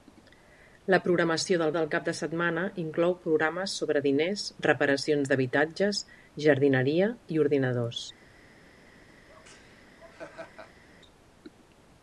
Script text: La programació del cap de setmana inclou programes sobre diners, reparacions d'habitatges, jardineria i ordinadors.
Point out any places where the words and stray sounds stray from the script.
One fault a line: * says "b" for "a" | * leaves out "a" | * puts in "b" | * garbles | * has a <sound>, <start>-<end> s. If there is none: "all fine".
* puts in "del"
* has a laugh, 9.3-10.8 s